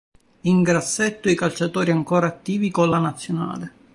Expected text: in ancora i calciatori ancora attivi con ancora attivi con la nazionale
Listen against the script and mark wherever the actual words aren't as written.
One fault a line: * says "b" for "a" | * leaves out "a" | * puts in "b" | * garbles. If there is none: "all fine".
* says "grassetto" for "ancora"
* leaves out "ancora attivi con"